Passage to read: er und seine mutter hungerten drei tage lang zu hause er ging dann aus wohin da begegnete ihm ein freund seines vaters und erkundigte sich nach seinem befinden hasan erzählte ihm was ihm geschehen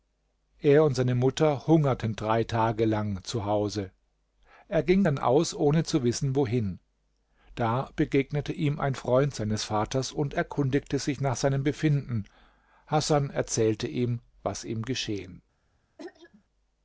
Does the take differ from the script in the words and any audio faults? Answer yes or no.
yes